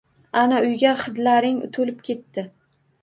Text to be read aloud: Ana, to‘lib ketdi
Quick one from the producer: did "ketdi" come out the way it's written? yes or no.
yes